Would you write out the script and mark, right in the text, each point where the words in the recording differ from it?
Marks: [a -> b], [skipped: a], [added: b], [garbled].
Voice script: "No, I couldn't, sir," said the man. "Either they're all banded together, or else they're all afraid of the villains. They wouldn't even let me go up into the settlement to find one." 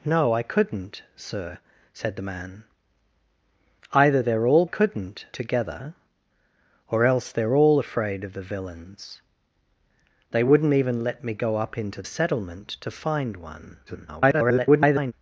"No, I couldn't, sir," said the man. "Either they're all [banded -> couldn't] together, or else they're all afraid of the villains. They wouldn't even let me go up into [skipped: the] settlement to find one." [garbled]